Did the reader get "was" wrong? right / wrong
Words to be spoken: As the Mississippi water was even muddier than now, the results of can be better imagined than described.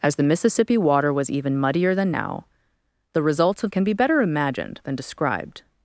right